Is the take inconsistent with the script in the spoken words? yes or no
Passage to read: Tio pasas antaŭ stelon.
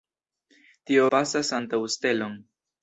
no